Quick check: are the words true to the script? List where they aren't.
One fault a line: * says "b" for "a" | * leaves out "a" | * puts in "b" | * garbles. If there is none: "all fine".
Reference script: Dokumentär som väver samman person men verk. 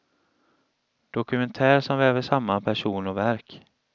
* says "och" for "men"